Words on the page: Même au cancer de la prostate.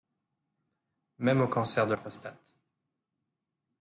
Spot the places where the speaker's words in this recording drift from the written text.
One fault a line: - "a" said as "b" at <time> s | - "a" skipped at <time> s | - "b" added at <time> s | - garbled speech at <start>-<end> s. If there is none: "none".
- "la" skipped at 1.9 s